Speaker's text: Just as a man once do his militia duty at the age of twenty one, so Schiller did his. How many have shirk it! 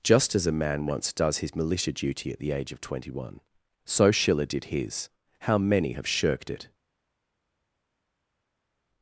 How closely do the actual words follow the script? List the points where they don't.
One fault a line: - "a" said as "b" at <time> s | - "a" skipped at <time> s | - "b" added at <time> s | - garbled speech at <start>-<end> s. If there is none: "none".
- "do" said as "does" at 1.1 s
- "shirk" said as "shirked" at 6.1 s